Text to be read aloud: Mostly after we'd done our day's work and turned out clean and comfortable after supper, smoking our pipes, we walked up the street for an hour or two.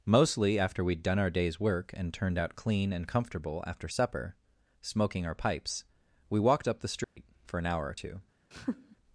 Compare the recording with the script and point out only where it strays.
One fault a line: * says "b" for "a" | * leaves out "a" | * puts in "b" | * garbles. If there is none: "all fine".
all fine